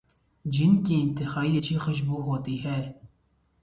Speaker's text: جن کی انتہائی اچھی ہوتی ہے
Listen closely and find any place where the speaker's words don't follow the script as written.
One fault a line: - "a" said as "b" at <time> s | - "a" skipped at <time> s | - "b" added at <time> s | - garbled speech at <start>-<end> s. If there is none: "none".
- "خوشبو" added at 1.8 s